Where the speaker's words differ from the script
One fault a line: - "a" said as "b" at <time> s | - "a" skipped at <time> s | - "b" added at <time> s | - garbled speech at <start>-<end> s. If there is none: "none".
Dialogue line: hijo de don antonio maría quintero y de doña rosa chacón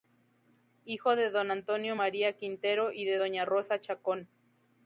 none